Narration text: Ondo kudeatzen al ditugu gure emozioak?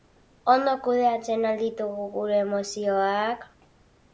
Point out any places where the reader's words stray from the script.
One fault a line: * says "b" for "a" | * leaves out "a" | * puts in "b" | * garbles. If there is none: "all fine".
all fine